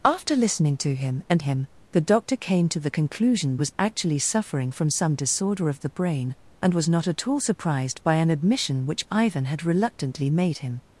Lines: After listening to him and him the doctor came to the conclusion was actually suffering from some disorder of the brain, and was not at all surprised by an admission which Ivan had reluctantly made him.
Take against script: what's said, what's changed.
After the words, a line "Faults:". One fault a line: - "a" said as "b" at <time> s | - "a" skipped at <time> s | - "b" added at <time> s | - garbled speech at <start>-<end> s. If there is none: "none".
After listening to him and him the doctor came to the conclusion was actually suffering from some disorder of the brain, and was not at all surprised by an admission which Ivan had reluctantly made him.
Faults:
none